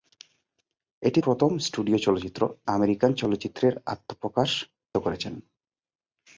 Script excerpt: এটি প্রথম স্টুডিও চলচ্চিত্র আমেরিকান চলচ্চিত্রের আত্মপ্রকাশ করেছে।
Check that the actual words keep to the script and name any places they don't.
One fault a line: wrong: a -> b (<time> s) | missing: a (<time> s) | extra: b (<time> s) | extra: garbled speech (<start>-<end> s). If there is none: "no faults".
no faults